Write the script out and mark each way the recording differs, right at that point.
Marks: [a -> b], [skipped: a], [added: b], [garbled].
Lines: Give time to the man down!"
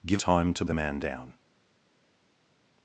Give time to the man down!"